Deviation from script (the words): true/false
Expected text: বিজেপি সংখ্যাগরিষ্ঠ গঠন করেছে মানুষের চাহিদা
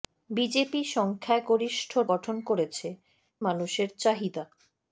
false